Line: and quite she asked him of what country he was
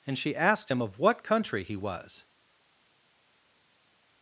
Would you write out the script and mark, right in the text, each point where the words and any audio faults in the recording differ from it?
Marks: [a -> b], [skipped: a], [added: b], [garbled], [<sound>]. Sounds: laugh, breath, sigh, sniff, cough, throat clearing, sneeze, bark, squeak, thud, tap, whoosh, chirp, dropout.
and [skipped: quite] she asked him of what country he was